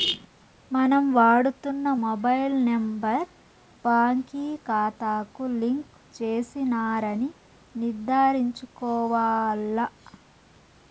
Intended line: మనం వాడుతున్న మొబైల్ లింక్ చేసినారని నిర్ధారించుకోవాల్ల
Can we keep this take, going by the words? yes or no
no